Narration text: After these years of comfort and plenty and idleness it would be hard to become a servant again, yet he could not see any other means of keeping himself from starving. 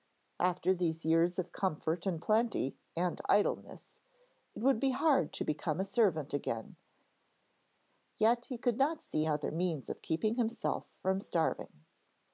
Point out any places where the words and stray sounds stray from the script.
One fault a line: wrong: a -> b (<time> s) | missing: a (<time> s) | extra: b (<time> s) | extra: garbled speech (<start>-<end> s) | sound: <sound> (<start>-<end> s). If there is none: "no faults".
missing: any (9.3 s)